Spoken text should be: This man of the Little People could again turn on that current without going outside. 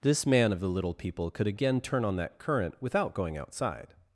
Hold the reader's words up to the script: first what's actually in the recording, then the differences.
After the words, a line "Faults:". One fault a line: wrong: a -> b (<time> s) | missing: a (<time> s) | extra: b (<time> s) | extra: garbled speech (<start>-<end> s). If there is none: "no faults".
This man of the Little People could again turn on that current without going outside.
Faults:
no faults